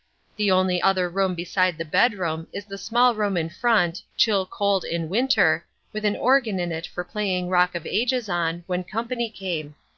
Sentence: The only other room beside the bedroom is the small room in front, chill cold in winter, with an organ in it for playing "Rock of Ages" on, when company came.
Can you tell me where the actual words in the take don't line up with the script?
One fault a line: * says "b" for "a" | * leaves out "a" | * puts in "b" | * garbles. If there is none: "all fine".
all fine